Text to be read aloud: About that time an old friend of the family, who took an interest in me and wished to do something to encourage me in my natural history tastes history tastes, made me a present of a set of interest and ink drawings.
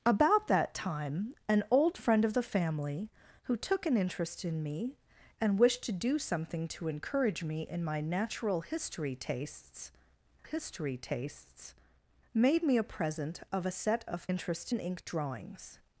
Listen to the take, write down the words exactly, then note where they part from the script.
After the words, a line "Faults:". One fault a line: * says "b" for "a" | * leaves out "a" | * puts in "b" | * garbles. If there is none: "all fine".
About that time an old friend of the family, who took an interest in me and wished to do something to encourage me in my natural history tastes history tastes, made me a present of a set of interest and ink drawings.
Faults:
all fine